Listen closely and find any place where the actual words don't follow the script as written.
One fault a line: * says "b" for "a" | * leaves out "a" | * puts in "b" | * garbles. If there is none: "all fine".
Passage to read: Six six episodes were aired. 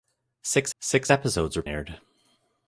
all fine